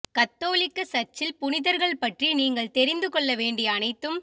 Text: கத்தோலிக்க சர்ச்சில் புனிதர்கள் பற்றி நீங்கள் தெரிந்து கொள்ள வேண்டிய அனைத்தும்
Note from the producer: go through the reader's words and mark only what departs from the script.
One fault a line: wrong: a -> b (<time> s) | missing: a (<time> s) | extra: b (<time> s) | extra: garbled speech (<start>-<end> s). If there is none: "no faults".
no faults